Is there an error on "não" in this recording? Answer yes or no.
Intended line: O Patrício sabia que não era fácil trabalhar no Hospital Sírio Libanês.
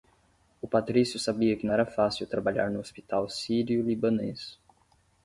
yes